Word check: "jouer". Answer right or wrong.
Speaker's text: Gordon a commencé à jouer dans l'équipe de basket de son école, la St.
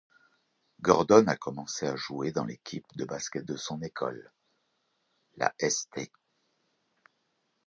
right